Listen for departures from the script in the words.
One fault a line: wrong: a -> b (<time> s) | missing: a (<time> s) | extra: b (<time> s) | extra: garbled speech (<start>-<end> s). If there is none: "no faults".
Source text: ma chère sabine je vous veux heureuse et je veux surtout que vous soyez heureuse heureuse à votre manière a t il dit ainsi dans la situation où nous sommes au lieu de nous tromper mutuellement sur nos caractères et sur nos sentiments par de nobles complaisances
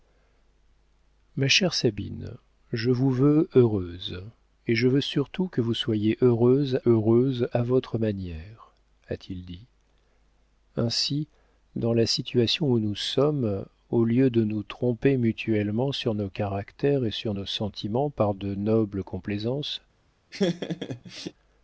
no faults